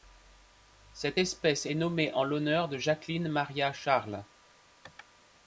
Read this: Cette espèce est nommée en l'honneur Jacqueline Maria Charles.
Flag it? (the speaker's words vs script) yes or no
yes